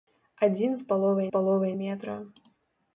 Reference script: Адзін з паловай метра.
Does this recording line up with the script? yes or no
no